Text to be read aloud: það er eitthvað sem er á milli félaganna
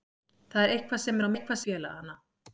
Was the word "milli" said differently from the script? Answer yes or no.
yes